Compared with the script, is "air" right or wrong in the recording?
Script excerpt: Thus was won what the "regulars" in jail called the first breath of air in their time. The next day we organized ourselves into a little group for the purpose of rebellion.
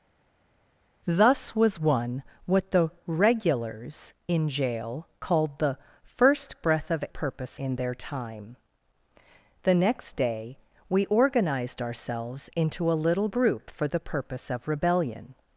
wrong